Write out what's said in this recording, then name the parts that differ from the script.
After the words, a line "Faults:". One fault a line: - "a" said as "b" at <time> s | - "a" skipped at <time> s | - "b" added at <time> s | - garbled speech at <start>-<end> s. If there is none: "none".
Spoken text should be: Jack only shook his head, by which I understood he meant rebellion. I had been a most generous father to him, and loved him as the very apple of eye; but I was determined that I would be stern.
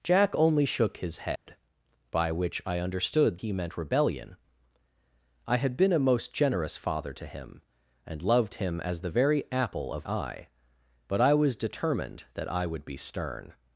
Jack only shook his head, by which I understood he meant rebellion. I had been a most generous father to him, and loved him as the very apple of eye; but I was determined that I would be stern.
Faults:
none